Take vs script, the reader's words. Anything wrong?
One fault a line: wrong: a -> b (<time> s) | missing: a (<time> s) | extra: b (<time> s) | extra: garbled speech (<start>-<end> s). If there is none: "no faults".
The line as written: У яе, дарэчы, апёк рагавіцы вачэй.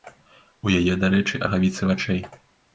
missing: апёк (1.4 s)